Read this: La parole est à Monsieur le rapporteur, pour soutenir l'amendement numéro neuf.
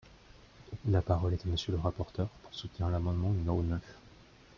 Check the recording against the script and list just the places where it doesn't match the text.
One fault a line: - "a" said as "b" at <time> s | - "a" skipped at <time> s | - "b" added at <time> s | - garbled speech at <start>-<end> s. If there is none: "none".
none